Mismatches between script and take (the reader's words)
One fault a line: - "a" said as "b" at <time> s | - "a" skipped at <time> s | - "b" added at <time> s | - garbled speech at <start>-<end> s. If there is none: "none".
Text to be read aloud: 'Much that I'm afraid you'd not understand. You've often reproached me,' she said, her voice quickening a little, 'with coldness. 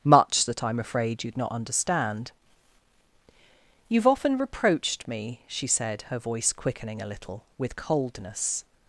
none